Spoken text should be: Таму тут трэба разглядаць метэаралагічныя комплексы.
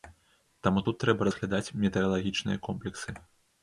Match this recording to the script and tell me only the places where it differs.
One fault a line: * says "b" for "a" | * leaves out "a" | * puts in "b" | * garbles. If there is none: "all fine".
all fine